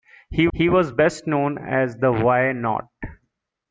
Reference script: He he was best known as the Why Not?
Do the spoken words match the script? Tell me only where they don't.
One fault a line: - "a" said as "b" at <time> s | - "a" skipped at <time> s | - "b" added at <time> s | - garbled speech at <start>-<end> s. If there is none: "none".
none